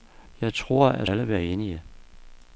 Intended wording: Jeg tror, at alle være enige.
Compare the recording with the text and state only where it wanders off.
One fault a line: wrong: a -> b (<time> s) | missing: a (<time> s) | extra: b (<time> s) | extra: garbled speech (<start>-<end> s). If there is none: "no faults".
no faults